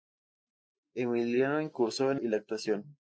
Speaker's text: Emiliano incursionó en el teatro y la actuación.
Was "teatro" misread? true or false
true